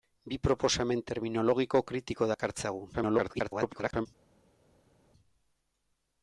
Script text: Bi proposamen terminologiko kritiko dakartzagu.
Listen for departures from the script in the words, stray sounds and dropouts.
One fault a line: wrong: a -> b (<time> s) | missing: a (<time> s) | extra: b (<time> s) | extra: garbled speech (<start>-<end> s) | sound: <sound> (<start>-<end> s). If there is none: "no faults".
extra: garbled speech (2.9-4.1 s)